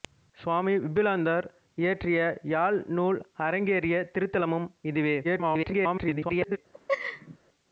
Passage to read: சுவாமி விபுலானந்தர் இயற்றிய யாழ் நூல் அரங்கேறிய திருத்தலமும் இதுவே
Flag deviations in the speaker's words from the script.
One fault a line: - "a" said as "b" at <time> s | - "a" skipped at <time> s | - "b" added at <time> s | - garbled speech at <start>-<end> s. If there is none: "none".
- garbled speech at 5.2-6.6 s